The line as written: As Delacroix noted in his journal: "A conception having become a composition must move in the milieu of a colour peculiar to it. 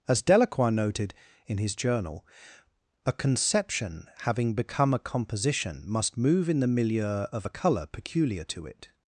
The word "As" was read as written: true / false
true